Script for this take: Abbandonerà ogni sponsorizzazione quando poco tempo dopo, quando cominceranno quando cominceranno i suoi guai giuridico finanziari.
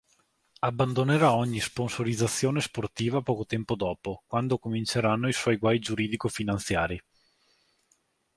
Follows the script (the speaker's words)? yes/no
no